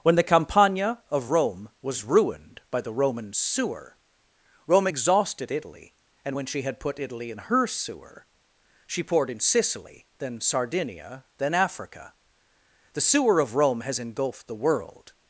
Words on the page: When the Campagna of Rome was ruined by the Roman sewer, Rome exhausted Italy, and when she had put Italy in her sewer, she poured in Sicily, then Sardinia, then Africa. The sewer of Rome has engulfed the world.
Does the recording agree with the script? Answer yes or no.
yes